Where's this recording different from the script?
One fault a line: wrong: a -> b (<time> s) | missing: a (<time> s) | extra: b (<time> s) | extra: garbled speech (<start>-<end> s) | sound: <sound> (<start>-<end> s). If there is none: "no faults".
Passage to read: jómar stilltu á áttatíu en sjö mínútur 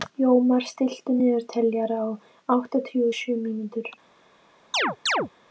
extra: niðurteljara (1.1 s)
wrong: en -> og (3.1 s)
sound: chirp (4.7-5.3 s)